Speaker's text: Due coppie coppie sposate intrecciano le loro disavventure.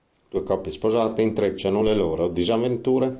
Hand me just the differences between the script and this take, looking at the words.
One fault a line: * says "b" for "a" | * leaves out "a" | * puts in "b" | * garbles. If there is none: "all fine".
* leaves out "coppie"